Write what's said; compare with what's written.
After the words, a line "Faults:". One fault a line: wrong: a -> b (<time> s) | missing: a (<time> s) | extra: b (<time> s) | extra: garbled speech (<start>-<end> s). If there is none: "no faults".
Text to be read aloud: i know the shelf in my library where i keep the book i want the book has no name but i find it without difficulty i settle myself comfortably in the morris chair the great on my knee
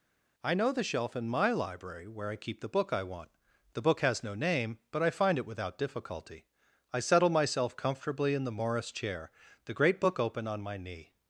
i know the shelf in my library where i keep the book i want the book has no name but i find it without difficulty i settle myself comfortably in the morris chair the great book open on my knee
Faults:
extra: book open (10.0 s)